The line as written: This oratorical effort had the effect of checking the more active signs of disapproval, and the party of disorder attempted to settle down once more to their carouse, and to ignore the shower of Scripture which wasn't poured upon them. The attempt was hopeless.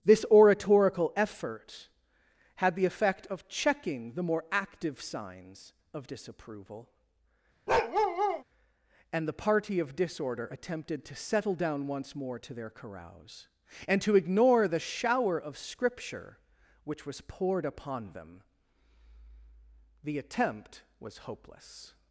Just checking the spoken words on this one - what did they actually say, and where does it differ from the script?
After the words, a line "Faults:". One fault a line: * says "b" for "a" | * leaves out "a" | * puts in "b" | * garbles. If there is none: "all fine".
This oratorical effort had the effect of checking the more active signs of disapproval, and the party of disorder attempted to settle down once more to their carouse, and to ignore the shower of Scripture which was poured upon them. The attempt was hopeless.
Faults:
* says "was" for "wasn't"